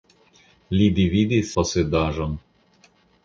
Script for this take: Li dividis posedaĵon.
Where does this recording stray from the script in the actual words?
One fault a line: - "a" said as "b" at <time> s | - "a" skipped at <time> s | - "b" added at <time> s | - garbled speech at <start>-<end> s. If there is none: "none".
none